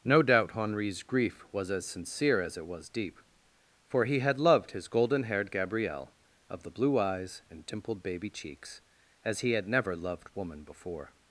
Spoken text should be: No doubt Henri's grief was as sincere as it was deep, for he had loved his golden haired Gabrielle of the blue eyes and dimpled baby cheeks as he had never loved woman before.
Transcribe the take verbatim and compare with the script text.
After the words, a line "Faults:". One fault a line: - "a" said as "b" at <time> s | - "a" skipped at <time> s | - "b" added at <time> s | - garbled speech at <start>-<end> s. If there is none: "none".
No doubt Henri's grief was as sincere as it was deep, for he had loved his golden haired Gabrielle of the blue eyes and dimpled baby cheeks as he had never loved woman before.
Faults:
none